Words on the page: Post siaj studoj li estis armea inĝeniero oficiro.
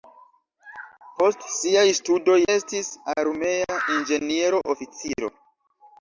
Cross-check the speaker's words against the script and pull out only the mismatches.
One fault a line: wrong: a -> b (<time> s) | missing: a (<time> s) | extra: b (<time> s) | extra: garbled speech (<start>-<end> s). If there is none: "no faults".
missing: li (2.4 s)